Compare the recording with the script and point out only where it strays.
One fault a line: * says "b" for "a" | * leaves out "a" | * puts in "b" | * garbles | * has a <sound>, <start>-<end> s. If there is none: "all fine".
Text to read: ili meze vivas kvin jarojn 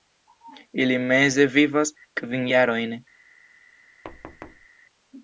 * has a thud, 4.0-4.7 s